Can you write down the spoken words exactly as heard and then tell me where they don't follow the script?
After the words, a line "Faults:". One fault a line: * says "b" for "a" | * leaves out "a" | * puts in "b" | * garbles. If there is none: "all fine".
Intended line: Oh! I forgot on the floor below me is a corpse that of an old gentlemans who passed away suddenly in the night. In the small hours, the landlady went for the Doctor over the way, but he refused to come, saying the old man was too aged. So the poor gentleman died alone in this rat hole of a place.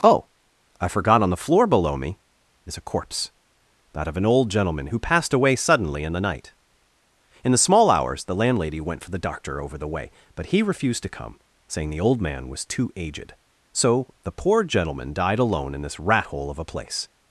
Oh! I forgot on the floor below me is a corpse that of an old gentleman who passed away suddenly in the night. In the small hours, the landlady went for the Doctor over the way, but he refused to come, saying the old man was too aged. So the poor gentleman died alone in this rat hole of a place.
Faults:
* says "gentleman" for "gentlemans"